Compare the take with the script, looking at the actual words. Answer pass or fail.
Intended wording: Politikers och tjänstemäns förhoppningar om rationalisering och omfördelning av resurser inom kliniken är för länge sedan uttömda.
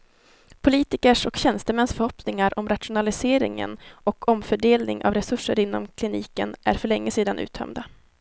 pass